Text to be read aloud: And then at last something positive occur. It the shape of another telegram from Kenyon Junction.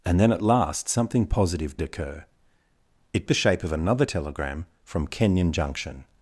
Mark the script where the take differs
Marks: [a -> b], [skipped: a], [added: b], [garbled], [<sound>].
And then at last something positive occur. It the shape of another telegram from Kenyon Junction.